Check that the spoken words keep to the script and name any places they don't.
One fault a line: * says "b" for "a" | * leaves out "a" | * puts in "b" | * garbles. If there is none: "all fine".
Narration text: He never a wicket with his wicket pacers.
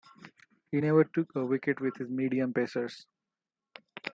* puts in "took"
* says "medium" for "wicket"